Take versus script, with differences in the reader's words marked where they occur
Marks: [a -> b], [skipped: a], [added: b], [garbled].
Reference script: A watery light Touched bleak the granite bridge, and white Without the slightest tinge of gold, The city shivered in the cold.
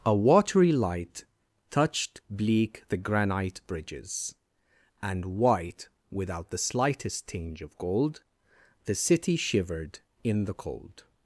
A watery light Touched bleak the granite [bridge, -> bridges] and white Without the slightest tinge of gold, The city shivered in the cold.